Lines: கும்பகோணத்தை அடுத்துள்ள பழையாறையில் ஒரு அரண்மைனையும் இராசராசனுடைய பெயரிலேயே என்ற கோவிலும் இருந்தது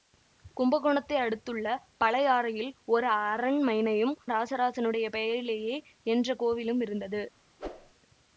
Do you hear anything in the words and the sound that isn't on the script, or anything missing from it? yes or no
yes